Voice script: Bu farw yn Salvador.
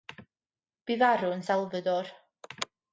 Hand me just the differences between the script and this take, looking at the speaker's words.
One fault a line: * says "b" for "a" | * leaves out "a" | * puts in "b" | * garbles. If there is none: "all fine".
all fine